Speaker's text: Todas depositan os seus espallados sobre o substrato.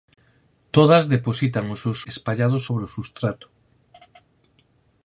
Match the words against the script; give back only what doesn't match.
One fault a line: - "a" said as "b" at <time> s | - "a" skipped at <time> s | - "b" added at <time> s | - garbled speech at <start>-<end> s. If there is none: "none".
none